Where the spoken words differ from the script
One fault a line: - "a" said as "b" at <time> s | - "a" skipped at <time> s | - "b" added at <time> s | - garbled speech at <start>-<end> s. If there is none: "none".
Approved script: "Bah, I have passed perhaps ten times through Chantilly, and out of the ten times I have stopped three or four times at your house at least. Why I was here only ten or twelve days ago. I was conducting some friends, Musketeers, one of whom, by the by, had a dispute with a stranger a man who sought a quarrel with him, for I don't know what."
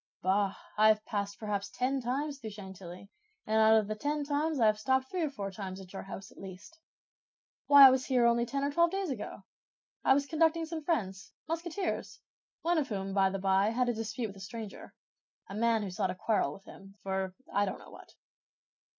none